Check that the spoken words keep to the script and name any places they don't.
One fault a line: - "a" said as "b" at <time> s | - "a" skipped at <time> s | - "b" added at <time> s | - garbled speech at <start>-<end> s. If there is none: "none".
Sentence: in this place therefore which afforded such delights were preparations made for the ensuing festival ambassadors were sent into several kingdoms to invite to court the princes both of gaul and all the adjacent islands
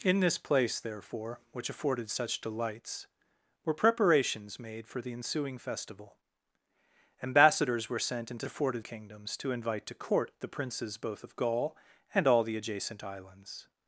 - "several" said as "afforded" at 8.5 s